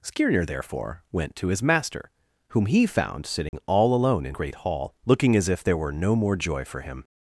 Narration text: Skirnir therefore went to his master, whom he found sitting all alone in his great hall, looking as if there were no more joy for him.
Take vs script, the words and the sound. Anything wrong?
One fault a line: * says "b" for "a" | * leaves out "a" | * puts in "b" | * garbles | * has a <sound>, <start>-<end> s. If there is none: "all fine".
* has a dropout, 3.5-3.5 s
* leaves out "his"